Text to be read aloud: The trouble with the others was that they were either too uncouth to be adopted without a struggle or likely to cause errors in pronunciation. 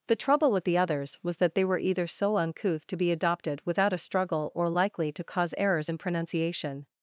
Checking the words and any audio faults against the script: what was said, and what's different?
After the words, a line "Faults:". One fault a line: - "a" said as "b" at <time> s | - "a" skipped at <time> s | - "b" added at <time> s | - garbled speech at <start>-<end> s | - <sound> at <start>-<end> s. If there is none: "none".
The trouble with the others was that they were either so uncouth to be adopted without a struggle or likely to cause errors in pronunciation.
Faults:
- "too" said as "so" at 2.1 s